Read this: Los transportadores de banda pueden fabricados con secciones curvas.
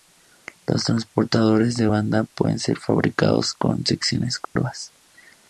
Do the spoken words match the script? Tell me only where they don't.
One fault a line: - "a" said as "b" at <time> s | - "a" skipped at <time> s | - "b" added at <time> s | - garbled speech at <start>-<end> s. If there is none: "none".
- "ser" added at 2.6 s